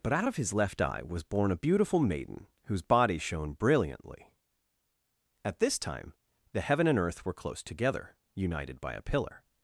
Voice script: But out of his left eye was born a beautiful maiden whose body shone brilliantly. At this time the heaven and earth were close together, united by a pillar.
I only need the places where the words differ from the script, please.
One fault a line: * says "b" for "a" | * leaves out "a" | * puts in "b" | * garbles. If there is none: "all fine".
all fine